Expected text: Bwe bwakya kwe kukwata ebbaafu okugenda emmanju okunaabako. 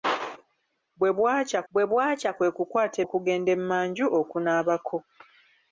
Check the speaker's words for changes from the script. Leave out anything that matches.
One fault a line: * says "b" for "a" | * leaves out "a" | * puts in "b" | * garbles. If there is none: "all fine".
* puts in "bwe bwakya"
* leaves out "ebbaafu"